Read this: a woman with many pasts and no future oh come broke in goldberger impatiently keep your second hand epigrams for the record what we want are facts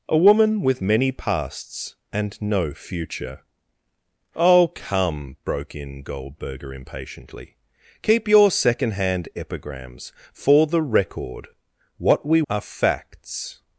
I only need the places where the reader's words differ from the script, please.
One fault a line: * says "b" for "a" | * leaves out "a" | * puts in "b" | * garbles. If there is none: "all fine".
* leaves out "want"